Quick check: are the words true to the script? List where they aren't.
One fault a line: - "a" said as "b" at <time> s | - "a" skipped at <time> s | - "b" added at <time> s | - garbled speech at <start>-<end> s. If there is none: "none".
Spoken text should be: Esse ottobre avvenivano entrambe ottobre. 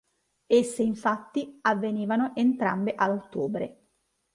- "ottobre" said as "infatti" at 0.8 s
- "a" added at 3.0 s